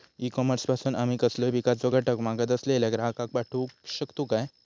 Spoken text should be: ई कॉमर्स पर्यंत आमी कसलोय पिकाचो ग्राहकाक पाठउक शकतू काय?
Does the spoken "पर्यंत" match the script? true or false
false